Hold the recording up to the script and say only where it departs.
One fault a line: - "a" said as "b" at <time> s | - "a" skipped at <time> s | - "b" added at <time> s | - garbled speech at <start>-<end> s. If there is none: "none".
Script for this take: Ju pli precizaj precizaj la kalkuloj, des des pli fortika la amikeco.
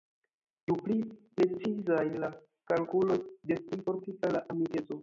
- "precizaj" skipped at 2.1 s
- "des" skipped at 3.6 s